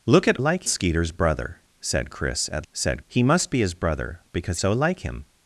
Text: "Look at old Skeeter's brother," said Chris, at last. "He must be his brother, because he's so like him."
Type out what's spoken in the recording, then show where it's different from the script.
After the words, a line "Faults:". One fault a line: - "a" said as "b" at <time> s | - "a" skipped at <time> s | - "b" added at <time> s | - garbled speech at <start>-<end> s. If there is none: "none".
"Look at like Skeeter's brother," said Chris, at said. "He must be his brother, because so like him."
Faults:
- "old" said as "like" at 0.4 s
- "last" said as "said" at 2.7 s
- "he's" skipped at 4.6 s